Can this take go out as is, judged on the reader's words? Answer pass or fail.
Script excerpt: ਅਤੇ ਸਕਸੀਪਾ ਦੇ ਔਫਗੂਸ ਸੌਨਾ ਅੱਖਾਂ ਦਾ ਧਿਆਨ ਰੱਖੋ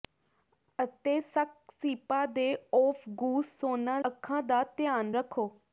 pass